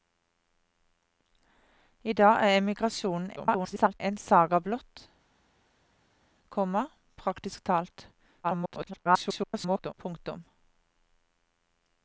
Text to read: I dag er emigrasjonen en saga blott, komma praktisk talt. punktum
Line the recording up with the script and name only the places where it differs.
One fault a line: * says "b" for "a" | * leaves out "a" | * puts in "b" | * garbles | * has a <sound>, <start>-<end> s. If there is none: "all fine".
* garbles
* garbles